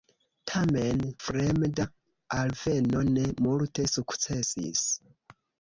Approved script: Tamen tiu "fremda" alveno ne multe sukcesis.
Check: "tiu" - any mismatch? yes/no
yes